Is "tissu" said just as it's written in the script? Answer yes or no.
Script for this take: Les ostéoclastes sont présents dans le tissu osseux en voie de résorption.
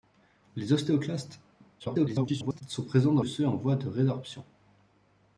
no